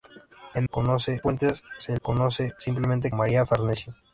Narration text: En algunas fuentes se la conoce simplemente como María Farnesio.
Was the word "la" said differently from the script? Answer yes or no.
yes